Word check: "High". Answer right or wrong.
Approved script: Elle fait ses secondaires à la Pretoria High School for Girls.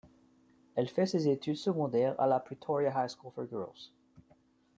right